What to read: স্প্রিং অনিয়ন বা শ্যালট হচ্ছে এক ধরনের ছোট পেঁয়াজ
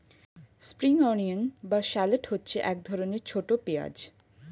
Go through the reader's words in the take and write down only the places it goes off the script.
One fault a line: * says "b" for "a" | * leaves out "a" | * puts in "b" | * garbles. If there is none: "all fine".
all fine